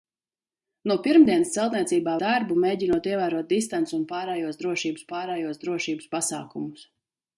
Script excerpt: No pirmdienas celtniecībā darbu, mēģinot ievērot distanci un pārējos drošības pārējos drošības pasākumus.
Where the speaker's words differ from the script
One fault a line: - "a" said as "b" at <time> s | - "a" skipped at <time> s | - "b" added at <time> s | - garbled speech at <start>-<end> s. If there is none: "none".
none